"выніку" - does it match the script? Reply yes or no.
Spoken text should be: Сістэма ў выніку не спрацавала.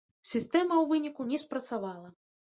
yes